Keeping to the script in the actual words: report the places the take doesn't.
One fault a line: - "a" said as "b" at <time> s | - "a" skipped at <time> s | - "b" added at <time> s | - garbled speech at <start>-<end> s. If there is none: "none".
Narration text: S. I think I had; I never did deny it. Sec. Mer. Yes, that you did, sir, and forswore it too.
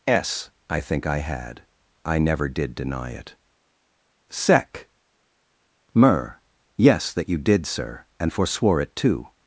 none